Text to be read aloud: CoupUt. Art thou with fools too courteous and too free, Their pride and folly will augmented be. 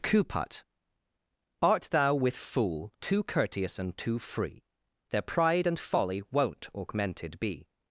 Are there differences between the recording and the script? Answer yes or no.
yes